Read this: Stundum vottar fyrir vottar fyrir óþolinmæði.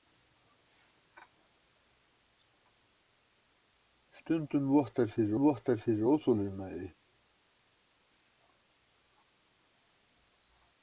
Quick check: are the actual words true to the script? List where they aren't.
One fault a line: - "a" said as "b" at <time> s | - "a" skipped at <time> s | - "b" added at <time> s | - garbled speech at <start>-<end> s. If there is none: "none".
none